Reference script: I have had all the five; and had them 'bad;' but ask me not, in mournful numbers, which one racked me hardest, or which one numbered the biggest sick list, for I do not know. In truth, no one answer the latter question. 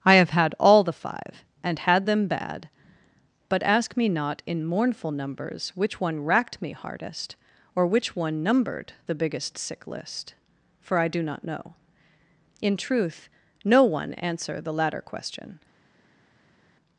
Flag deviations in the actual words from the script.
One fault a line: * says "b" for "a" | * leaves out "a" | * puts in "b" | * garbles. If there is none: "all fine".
all fine